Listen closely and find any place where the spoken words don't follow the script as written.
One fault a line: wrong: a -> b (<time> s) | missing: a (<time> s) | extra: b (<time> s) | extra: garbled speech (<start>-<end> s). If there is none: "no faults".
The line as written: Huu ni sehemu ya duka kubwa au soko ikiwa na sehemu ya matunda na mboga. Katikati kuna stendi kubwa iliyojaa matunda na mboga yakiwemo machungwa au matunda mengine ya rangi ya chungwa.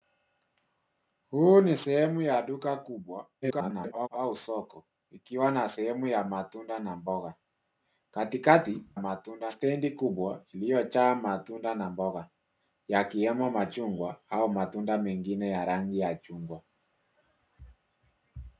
extra: garbled speech (3.4-4.1 s)
wrong: kuna -> matunda (9.0 s)